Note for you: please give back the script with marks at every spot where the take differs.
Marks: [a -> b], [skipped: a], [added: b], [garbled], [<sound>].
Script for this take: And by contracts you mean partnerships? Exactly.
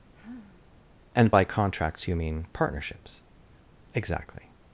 [sigh] And by contracts you mean partnerships? Exactly.